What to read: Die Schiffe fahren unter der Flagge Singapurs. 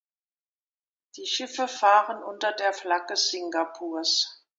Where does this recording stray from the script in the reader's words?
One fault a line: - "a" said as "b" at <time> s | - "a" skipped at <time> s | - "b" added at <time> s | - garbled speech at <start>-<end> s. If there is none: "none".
none